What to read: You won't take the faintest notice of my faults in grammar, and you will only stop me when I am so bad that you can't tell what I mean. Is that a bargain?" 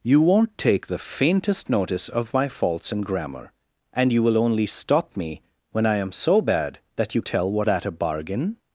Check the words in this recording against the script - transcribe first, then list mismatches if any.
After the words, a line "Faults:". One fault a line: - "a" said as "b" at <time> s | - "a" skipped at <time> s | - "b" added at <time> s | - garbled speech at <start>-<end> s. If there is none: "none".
You won't take the faintest notice of my faults in grammar, and you will only stop me when I am so bad that you tell what that a bargain?"
Faults:
- "can't" skipped at 7.2 s
- "I mean Is" skipped at 7.7 s